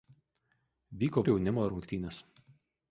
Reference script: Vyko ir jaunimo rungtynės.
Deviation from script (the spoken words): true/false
false